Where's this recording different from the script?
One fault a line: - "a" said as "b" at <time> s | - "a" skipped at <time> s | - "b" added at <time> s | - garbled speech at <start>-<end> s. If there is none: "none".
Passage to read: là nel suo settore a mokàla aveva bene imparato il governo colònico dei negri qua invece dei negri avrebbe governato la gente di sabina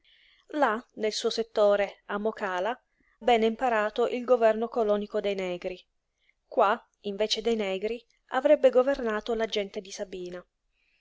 - "aveva" skipped at 2.7 s